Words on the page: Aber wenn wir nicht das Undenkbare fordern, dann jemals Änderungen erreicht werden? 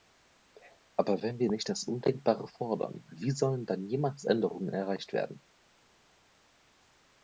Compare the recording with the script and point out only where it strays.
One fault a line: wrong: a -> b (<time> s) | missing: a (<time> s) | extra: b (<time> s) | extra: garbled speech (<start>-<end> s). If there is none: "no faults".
extra: wie sollen (3.1 s)